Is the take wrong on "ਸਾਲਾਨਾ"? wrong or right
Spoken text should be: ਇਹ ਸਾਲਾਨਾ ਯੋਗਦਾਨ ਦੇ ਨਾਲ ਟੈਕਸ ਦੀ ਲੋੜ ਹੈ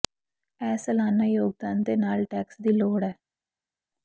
right